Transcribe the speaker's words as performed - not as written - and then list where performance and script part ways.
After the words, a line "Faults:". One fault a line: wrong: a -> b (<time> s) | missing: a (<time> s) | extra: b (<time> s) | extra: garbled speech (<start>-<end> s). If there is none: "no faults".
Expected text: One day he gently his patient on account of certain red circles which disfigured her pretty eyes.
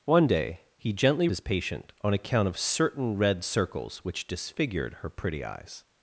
One day he gently his patient on account of certain red circles which disfigured her pretty eyes.
Faults:
no faults